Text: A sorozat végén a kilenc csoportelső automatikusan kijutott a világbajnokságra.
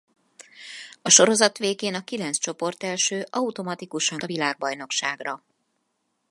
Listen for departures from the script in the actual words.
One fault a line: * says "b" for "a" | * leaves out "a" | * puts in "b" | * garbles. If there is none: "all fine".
* leaves out "kijutott"